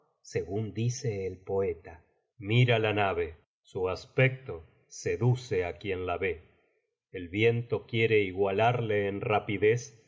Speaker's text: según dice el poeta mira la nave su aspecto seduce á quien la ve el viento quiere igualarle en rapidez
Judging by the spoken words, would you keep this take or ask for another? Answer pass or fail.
pass